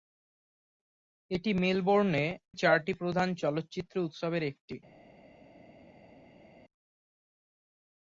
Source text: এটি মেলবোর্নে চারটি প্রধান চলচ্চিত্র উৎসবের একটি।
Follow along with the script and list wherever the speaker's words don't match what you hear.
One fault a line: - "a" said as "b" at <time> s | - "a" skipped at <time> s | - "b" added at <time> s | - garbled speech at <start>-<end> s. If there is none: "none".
none